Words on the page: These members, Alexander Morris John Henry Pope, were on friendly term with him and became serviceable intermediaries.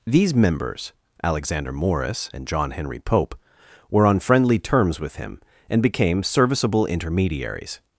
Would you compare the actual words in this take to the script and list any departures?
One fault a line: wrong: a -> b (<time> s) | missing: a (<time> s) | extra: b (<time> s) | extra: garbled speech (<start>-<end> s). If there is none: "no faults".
extra: and (2.3 s)
wrong: term -> terms (4.6 s)